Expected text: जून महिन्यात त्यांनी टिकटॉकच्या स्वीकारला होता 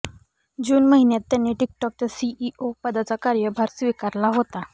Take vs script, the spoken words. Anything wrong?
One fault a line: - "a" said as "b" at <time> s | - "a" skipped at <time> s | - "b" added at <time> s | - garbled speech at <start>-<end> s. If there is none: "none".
- "सीईओ पदाचा कार्यभार" added at 2.1 s